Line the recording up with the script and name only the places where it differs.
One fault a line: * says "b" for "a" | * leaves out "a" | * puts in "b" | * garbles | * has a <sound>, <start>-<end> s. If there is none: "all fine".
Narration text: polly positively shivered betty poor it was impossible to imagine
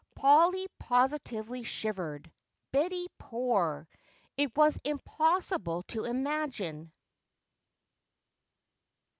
all fine